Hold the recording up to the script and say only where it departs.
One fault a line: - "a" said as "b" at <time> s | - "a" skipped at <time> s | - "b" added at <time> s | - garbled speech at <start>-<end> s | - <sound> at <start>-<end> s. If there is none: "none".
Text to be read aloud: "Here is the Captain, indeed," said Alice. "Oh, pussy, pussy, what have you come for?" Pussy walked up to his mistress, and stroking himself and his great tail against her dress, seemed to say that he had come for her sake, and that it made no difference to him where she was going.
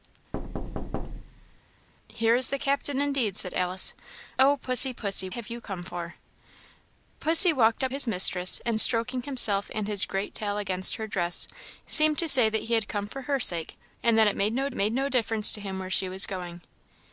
- thud at 0.3-1.6 s
- "what" skipped at 5.3 s
- "to" skipped at 7.9 s
- "made no" added at 14.7 s